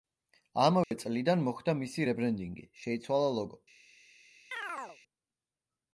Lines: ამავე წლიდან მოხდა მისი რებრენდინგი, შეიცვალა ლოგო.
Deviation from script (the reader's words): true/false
false